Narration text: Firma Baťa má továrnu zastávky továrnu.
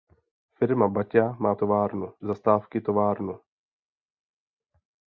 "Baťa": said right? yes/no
yes